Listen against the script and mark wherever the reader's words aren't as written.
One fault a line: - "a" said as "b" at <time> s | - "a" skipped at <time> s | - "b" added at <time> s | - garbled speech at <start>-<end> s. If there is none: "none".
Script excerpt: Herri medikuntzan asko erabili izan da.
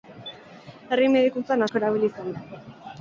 none